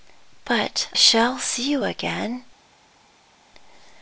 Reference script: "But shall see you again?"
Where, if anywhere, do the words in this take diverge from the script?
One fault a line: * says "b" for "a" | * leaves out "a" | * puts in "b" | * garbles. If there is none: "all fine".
all fine